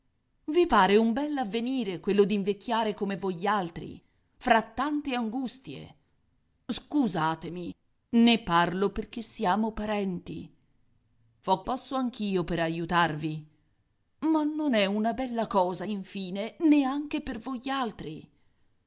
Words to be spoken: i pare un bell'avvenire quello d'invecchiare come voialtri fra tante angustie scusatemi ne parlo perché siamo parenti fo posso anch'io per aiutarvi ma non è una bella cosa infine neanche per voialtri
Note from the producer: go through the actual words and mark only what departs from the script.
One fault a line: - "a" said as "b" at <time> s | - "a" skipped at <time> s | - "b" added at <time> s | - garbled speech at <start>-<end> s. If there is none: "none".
none